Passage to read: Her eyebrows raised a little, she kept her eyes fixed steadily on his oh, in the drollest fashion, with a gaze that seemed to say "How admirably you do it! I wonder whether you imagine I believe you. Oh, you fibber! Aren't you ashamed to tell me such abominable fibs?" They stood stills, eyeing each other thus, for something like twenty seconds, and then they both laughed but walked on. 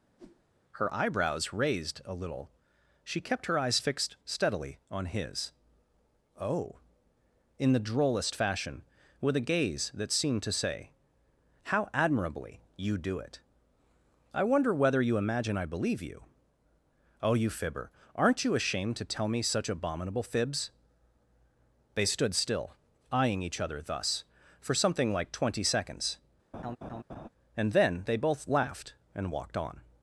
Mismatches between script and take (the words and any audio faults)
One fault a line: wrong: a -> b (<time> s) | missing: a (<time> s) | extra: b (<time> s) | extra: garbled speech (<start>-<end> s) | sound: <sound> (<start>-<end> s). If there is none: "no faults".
sound: whoosh (0.2-0.4 s)
wrong: stills -> still (22.3 s)
sound: laugh (26.5-27.3 s)
wrong: but -> and (29.1 s)